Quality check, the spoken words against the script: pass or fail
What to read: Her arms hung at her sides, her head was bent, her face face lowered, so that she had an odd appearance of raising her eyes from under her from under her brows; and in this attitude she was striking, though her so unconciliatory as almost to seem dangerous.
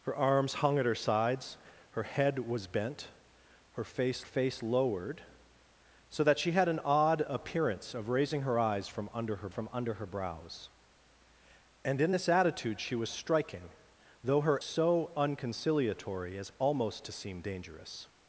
pass